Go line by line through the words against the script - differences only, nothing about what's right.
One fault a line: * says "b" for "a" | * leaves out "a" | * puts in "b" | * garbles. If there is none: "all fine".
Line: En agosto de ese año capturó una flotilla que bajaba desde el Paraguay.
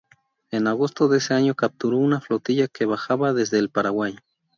all fine